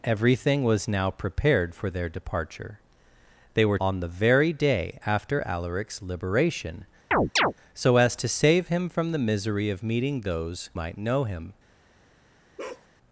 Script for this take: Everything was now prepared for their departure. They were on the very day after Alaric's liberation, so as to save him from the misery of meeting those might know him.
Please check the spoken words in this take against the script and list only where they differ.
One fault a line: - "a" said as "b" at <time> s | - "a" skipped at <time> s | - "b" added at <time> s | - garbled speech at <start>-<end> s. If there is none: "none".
none